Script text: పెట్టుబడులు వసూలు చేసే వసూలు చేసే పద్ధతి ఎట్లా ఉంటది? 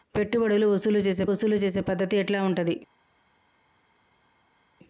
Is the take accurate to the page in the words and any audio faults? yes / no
yes